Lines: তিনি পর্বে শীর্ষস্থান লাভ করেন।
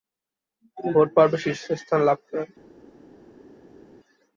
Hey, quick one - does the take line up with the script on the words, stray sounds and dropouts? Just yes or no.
no